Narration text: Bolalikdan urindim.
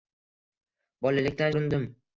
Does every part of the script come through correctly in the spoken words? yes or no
yes